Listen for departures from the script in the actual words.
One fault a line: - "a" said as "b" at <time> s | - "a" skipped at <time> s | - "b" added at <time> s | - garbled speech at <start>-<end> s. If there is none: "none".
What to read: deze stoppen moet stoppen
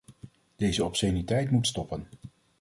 - "stoppen" said as "obsceniteit" at 0.8 s